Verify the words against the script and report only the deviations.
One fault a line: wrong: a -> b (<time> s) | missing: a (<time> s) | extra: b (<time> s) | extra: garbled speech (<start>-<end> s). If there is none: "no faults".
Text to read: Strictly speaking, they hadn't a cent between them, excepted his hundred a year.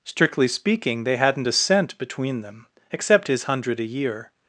wrong: excepted -> except (2.9 s)